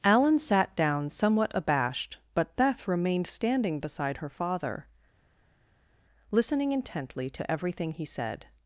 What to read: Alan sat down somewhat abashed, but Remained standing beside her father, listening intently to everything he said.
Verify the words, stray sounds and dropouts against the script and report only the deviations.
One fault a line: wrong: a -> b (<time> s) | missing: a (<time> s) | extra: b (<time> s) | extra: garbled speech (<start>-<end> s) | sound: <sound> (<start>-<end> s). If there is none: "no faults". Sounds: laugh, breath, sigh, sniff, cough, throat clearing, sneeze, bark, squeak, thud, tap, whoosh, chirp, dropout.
extra: Beth (2.5 s)